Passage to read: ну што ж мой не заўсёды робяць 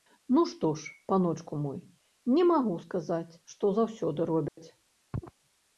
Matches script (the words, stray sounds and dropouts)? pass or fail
fail